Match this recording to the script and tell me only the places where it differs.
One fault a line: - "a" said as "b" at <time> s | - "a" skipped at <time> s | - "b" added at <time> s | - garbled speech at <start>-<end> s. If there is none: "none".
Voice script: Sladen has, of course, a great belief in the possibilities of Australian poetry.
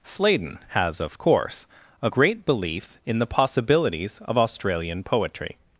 none